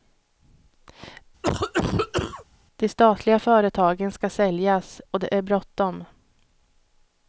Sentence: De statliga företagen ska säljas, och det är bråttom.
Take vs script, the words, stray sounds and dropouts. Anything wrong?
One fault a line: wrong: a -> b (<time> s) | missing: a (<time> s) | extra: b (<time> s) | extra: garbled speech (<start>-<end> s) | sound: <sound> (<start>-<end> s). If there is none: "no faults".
sound: cough (1.4-2.4 s)